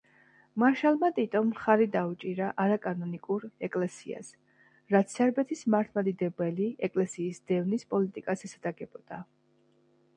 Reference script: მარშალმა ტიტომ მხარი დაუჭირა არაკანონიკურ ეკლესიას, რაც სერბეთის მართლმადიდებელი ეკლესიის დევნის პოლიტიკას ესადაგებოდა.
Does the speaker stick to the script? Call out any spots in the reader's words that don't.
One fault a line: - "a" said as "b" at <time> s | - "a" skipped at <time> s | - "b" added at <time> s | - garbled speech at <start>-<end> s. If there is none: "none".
none